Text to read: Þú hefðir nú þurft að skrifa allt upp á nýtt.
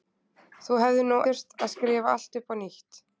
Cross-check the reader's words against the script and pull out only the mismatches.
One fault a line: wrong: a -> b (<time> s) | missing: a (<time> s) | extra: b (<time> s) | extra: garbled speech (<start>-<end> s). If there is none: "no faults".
no faults